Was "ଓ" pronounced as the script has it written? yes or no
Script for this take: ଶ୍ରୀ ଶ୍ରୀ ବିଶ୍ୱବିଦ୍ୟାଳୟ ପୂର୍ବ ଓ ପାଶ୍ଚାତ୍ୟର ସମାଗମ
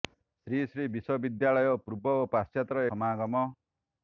yes